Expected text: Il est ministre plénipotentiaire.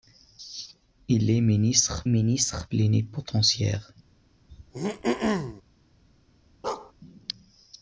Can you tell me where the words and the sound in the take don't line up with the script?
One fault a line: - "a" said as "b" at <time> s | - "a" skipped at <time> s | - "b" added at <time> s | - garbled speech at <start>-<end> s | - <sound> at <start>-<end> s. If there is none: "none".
- "ministre" added at 2.1 s
- throat clearing at 4.5-5.6 s
- bark at 6.6-6.9 s